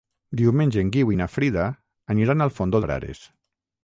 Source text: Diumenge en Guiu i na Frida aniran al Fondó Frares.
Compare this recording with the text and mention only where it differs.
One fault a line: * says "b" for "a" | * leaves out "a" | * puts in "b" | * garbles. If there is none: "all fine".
all fine